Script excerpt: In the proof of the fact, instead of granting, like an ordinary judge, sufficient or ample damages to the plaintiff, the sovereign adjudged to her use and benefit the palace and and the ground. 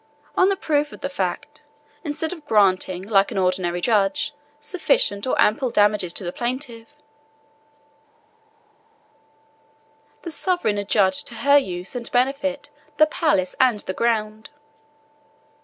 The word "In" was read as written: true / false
false